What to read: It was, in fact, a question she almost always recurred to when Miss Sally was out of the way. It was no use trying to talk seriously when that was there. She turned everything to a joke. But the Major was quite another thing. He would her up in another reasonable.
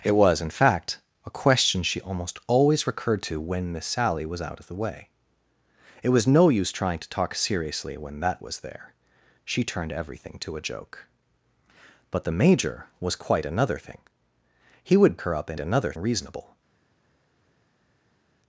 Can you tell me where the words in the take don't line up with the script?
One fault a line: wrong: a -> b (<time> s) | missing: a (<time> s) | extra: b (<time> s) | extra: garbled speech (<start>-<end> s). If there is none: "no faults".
no faults